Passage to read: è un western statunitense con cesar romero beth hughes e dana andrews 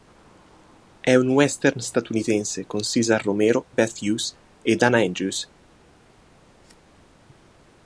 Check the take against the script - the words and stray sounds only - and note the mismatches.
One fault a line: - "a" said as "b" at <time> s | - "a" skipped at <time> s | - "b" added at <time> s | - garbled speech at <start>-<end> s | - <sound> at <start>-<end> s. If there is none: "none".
none